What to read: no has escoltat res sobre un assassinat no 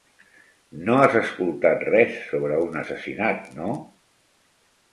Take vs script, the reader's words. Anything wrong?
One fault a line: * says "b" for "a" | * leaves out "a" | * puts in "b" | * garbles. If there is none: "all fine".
all fine